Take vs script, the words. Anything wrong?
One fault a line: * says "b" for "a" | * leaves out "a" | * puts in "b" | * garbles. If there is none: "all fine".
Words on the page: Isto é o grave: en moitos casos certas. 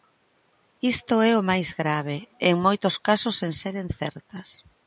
* puts in "máis"
* puts in "sen seren"